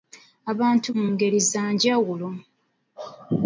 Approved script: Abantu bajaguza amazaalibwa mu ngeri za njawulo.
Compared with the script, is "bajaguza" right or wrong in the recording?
wrong